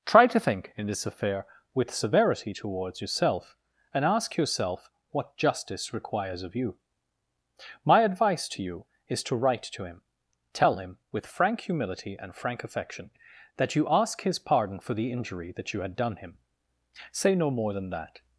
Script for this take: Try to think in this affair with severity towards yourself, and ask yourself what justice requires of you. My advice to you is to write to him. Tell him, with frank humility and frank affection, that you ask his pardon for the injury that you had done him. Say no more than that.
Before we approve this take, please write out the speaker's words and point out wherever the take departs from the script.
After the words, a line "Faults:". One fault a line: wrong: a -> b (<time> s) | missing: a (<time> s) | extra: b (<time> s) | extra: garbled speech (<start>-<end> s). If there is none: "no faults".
Try to think in this affair with severity towards yourself, and ask yourself what justice requires of you. My advice to you is to write to him. Tell him, with frank humility and frank affection, that you ask his pardon for the injury that you had done him. Say no more than that.
Faults:
no faults